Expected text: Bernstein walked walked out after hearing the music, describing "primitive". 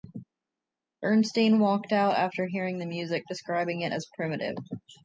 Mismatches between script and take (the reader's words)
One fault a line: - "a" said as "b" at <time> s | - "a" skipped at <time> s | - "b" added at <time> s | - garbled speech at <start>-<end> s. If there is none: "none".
- "walked" skipped at 1.9 s
- "it as" added at 3.8 s